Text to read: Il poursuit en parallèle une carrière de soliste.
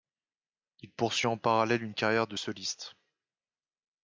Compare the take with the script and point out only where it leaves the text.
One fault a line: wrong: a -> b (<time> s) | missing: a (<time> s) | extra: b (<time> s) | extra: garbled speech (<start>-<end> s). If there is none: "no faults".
no faults